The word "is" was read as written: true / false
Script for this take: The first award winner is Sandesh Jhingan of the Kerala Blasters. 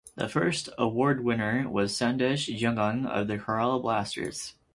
false